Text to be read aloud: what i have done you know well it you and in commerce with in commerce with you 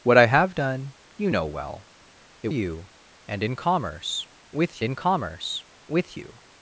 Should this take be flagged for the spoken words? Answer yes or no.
no